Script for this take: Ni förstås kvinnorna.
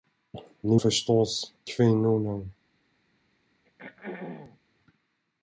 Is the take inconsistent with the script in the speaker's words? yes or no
no